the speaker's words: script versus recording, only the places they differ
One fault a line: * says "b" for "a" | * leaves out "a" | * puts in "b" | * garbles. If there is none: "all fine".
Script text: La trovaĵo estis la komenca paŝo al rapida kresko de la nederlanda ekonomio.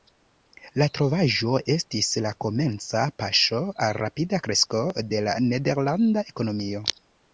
all fine